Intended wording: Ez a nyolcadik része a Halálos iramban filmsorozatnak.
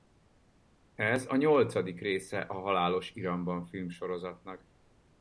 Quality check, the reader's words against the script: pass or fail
pass